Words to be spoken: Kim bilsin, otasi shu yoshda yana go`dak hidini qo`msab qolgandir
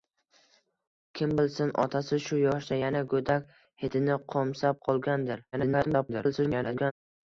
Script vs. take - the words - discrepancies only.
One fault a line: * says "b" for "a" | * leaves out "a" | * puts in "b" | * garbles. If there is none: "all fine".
* garbles